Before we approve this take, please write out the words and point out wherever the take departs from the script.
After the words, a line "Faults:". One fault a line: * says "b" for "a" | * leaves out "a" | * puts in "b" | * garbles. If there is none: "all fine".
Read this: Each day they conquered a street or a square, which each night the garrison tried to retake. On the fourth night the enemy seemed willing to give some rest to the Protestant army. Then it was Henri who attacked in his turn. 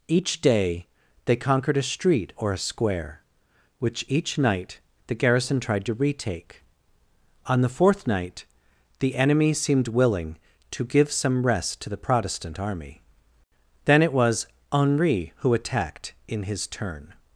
Each day they conquered a street or a square, which each night the garrison tried to retake. On the fourth night the enemy seemed willing to give some rest to the Protestant army. Then it was Henri who attacked in his turn.
Faults:
all fine